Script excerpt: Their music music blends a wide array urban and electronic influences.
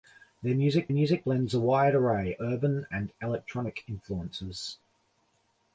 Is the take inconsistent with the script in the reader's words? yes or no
no